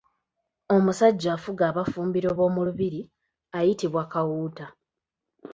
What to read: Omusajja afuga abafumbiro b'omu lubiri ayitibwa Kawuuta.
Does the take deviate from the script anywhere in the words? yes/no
no